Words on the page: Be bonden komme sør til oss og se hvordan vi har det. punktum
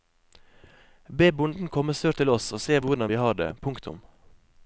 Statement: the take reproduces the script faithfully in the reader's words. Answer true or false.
true